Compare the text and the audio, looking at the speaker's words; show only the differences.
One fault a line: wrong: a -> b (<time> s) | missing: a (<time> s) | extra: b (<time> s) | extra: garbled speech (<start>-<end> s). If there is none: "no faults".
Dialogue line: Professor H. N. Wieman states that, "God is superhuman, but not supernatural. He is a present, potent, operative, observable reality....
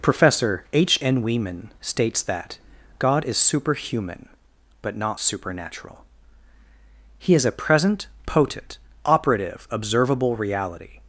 no faults